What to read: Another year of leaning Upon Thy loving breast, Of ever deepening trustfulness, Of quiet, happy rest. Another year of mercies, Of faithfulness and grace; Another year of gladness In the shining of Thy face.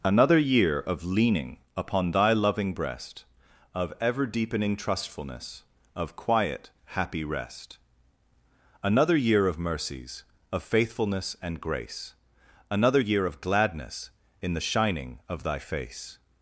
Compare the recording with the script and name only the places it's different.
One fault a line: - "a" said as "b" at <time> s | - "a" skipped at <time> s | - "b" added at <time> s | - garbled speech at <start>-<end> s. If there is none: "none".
none